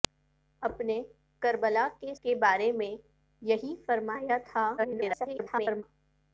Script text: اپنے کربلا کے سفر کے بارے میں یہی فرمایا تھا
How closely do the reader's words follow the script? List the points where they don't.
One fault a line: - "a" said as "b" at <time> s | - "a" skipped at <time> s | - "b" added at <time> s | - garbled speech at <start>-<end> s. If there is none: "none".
- "سفر" skipped at 2.1 s
- garbled speech at 4.8-5.8 s